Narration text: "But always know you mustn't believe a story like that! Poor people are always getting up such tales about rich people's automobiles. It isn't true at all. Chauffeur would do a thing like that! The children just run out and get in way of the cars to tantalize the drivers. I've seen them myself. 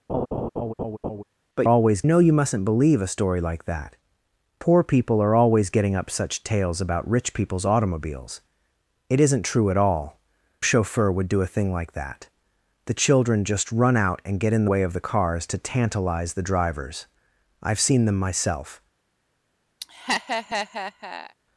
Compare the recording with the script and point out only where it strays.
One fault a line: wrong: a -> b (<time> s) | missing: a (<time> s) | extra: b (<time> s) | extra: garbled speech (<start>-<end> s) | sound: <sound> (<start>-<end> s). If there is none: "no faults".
sound: laugh (0.1-1.2 s)
sound: laugh (19.8-21.3 s)